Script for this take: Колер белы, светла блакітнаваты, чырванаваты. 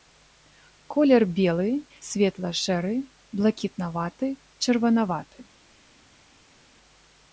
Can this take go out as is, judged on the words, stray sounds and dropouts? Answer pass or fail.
fail